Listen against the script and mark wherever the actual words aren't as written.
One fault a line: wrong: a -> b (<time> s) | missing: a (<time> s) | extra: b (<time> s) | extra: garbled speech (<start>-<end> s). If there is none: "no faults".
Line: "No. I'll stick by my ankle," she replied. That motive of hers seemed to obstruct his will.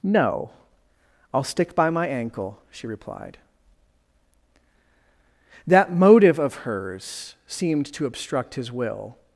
no faults